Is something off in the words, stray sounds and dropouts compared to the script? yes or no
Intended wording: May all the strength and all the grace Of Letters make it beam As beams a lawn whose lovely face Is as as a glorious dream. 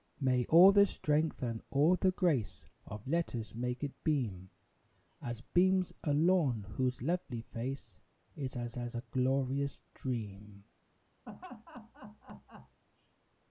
yes